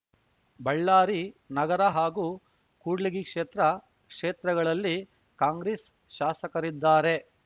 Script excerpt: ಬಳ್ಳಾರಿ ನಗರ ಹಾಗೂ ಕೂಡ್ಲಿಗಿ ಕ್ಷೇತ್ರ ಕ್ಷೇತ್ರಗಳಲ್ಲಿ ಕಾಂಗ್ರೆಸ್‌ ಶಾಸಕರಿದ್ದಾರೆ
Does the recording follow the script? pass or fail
pass